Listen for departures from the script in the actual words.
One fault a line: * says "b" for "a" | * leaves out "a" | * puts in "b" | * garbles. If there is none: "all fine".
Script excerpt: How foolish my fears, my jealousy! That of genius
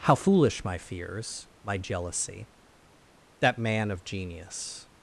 * puts in "man"